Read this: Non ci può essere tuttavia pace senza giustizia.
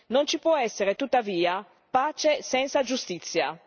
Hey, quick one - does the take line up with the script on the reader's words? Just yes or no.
yes